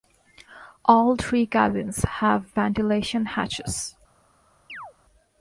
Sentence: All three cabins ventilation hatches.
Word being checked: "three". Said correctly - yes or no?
yes